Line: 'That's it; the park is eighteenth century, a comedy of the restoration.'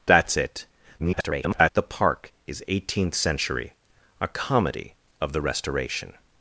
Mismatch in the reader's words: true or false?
true